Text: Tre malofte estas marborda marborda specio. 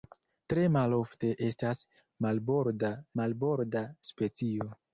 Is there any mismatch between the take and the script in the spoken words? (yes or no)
no